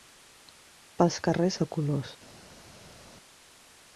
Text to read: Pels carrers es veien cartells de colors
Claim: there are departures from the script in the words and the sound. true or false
true